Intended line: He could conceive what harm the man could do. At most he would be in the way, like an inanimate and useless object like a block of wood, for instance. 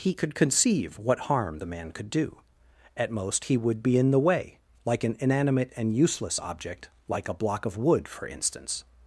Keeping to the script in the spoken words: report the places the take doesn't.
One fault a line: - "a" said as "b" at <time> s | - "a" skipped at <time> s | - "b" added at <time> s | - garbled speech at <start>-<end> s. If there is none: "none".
none